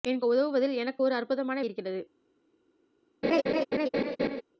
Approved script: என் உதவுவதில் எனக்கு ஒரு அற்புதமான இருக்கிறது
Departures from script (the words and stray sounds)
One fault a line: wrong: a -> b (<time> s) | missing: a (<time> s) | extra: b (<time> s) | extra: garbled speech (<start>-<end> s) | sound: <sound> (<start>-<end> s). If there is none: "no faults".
sound: laugh (3.2-4.4 s)